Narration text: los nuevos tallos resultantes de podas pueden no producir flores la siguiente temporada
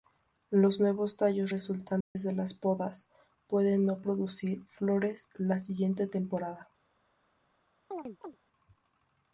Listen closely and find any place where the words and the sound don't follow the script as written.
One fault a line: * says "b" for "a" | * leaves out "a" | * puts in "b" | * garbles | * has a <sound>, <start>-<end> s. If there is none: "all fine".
* has a dropout, 2.0-2.2 s
* puts in "las"
* has a chirp, 7.9-8.4 s